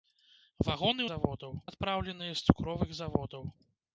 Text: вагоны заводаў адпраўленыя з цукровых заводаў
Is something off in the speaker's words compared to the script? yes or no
no